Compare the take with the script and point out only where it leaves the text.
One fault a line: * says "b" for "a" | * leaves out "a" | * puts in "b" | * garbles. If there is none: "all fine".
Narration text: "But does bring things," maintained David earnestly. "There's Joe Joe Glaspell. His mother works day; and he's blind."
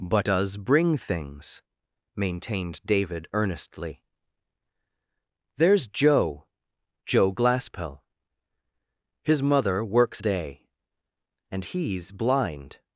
all fine